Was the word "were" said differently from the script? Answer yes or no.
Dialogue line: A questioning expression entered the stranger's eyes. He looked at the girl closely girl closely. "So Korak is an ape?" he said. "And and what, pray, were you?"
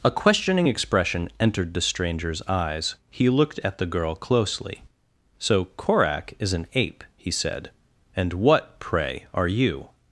yes